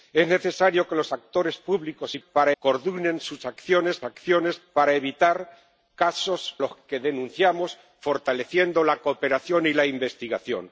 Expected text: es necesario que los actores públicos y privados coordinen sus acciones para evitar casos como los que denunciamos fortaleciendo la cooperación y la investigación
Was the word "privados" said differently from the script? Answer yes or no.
yes